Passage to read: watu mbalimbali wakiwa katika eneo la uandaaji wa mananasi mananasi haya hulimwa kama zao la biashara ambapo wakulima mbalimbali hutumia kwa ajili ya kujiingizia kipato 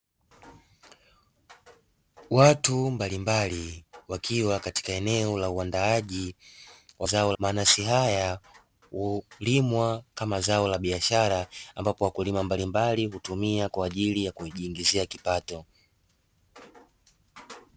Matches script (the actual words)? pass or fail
fail